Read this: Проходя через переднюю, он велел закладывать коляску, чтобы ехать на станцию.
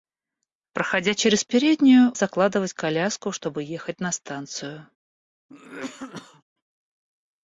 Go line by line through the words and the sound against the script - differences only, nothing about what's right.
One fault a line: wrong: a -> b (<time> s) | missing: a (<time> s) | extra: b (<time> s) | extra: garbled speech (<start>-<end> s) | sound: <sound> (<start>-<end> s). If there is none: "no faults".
missing: он велел (2.1 s)
sound: cough (5.5-6.4 s)